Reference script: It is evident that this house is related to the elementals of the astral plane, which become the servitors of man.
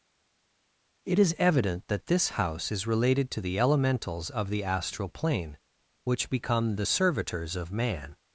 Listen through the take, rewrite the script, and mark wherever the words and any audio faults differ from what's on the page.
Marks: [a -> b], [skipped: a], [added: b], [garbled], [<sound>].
It is evident that this house is related to the elementals of the astral plane, which become the servitors of man.